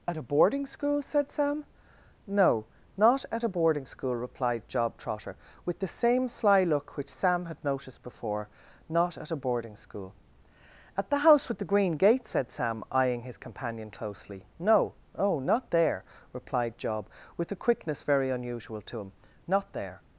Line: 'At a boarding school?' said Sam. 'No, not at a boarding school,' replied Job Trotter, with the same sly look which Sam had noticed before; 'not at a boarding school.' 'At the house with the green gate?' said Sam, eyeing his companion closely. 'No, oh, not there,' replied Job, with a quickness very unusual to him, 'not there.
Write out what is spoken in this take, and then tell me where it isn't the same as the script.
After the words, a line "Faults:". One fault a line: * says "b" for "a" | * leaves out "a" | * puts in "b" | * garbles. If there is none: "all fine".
'At a boarding school?' said Sam. 'No, not at a boarding school,' replied Job Trotter, with the same sly look which Sam had noticed before; 'not at a boarding school.' 'At the house with the green gate?' said Sam, eyeing his companion closely. 'No, oh, not there,' replied Job, with a quickness very unusual to him, 'not there.
Faults:
all fine